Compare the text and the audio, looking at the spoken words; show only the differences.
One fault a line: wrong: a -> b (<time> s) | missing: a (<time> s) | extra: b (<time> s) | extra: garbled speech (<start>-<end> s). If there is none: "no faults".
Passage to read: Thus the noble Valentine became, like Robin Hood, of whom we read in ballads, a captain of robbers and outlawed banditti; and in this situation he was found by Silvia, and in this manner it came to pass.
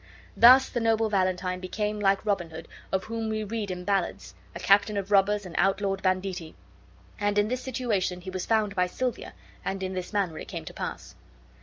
no faults